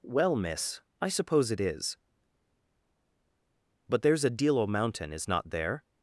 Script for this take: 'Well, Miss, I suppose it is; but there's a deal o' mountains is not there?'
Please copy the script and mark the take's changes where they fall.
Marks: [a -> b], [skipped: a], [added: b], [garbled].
'Well, Miss, I suppose it is; but there's a deal o' [mountains -> mountain] is not there?'